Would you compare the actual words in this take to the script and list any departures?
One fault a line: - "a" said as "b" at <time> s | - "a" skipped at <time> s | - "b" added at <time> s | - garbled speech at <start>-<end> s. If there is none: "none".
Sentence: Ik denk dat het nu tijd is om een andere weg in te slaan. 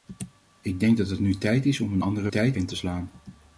- "weg" said as "tijd" at 2.3 s